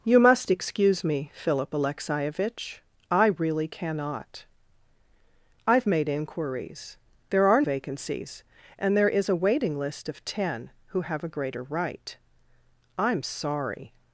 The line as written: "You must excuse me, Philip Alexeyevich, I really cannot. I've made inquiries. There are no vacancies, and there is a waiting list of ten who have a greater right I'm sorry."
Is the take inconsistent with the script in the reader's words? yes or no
yes